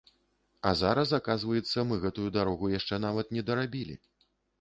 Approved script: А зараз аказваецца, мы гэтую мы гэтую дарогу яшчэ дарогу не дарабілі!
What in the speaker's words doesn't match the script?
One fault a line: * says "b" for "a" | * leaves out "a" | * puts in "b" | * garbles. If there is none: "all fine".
* leaves out "мы гэтую"
* says "нават" for "дарогу"